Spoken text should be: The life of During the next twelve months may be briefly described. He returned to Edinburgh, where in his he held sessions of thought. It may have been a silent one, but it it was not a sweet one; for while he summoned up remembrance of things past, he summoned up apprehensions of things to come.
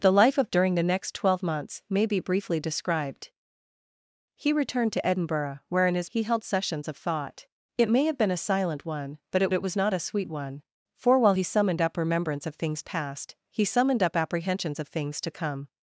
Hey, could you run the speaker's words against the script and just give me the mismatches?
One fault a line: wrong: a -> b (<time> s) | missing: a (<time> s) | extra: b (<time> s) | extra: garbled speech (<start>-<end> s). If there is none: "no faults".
no faults